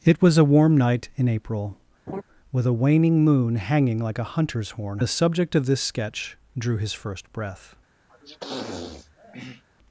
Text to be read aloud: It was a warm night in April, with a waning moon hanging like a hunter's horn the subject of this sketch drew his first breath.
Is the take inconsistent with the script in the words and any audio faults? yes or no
yes